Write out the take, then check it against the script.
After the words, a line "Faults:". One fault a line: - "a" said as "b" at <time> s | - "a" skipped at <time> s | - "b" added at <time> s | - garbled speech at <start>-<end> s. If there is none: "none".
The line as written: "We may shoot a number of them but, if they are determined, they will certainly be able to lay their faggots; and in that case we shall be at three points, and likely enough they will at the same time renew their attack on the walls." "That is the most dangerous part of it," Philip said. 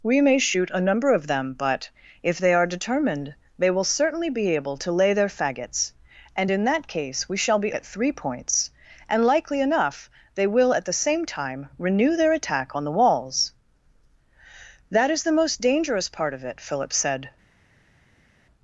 "We may shoot a number of them but, if they are determined, they will certainly be able to lay their faggots; and in that case we shall be at three points, and likely enough they will at the same time renew their attack on the walls." "That is the most dangerous part of it," Philip said.
Faults:
none